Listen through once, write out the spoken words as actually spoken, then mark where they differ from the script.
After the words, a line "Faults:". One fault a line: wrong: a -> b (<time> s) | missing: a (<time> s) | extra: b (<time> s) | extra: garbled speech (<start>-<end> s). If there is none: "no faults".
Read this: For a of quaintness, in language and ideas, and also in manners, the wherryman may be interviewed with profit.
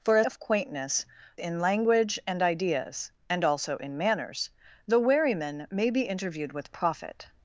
For a of quaintness, in language and ideas, and also in manners, the wherryman may be interviewed with profit.
Faults:
no faults